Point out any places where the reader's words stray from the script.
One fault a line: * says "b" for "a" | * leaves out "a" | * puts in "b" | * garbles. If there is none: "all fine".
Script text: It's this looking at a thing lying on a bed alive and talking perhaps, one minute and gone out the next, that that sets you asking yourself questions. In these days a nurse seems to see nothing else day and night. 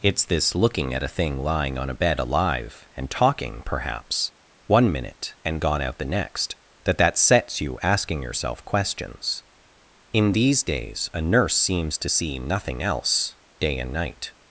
all fine